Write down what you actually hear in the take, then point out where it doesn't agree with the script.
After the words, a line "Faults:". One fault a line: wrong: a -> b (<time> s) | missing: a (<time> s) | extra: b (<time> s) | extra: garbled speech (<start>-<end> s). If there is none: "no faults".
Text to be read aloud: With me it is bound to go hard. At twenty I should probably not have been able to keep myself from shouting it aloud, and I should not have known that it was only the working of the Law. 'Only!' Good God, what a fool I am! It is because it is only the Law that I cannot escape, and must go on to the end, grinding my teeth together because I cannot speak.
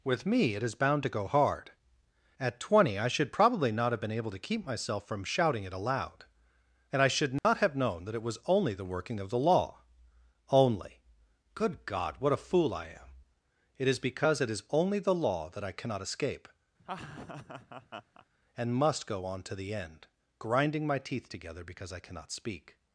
With me it is bound to go hard. At twenty I should probably not have been able to keep myself from shouting it aloud, and I should not have known that it was only the working of the Law. 'Only!' Good God, what a fool I am! It is because it is only the Law that I cannot escape, and must go on to the end, grinding my teeth together because I cannot speak.
Faults:
no faults